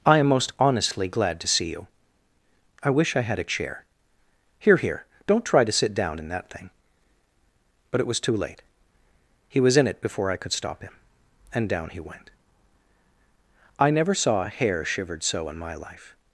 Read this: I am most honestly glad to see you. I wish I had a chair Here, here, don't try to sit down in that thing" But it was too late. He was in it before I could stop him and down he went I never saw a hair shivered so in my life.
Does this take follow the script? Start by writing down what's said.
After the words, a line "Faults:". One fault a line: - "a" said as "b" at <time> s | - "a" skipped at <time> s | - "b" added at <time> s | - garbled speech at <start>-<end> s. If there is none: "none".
I am most honestly glad to see you. I wish I had a chair Here, here, don't try to sit down in that thing" But it was too late. He was in it before I could stop him and down he went I never saw a hair shivered so in my life.
Faults:
none